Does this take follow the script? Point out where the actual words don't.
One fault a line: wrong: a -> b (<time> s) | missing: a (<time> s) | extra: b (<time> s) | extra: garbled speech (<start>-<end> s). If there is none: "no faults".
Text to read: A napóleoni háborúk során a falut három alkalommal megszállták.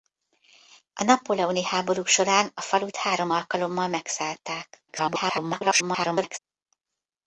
extra: garbled speech (4.9-6.4 s)